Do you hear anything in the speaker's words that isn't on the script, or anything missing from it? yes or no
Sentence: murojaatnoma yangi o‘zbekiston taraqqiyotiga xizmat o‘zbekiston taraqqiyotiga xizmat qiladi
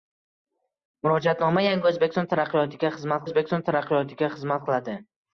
no